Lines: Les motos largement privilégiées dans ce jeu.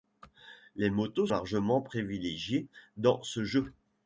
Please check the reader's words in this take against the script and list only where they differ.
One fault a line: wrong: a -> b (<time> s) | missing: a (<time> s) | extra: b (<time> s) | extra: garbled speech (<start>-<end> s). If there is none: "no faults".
no faults